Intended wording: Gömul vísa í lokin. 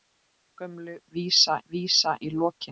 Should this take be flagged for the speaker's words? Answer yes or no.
yes